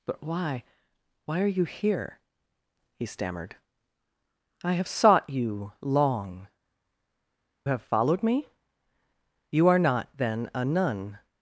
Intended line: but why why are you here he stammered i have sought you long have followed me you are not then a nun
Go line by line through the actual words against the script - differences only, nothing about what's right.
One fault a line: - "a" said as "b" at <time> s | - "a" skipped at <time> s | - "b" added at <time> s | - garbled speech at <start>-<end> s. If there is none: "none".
none